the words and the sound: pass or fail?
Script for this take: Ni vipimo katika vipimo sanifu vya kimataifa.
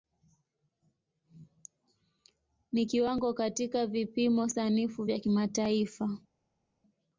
fail